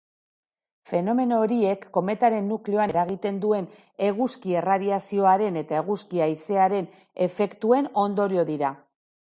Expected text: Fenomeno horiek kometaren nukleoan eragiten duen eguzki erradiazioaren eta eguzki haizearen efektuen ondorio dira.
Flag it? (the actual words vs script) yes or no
no